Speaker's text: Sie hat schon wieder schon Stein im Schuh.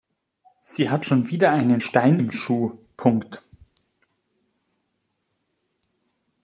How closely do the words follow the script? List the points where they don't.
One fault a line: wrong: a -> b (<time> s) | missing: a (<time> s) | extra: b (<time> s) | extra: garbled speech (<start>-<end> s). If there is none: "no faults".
wrong: schon -> einen (1.5 s)